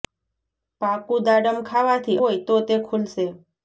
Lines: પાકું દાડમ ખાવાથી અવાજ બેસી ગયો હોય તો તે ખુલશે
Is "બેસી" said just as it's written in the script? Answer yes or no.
no